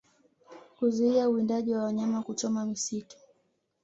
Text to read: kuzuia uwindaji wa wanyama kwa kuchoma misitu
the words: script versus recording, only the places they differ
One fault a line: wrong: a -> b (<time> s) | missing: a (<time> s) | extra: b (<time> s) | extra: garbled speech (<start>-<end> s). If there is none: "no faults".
missing: kwa (2.2 s)